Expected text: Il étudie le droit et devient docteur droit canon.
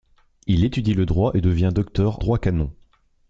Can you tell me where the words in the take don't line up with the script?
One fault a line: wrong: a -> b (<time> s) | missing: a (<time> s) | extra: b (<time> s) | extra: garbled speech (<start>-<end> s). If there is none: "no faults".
no faults